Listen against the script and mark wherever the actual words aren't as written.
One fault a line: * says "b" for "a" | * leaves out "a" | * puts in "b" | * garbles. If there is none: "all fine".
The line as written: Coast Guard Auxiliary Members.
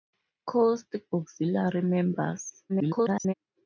* leaves out "Guard"
* garbles